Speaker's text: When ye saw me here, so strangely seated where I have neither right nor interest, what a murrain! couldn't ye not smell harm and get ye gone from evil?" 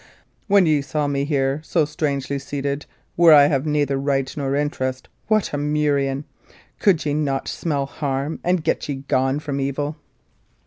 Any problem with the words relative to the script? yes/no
yes